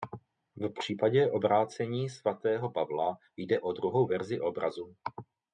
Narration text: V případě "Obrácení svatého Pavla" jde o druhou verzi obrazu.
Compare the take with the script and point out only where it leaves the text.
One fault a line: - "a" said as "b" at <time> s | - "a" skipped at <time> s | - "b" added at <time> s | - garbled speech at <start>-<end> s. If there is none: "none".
none